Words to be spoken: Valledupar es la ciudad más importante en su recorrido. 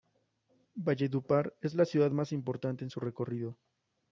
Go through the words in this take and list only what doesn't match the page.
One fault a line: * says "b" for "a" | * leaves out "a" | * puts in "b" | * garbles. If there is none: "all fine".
all fine